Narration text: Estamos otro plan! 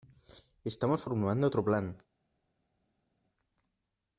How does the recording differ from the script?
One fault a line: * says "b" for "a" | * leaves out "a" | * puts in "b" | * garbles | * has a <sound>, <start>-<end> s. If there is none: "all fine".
* puts in "formulando"